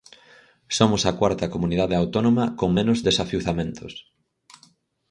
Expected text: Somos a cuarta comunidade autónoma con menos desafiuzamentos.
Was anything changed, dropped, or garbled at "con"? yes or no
no